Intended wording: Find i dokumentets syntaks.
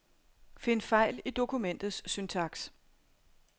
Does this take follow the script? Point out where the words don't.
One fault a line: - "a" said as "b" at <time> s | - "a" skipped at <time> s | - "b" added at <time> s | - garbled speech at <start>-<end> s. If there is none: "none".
- "fejl" added at 0.8 s